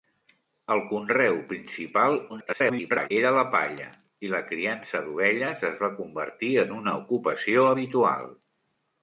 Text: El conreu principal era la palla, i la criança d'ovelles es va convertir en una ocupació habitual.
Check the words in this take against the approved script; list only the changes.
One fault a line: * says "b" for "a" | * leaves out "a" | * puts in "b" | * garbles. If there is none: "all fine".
* garbles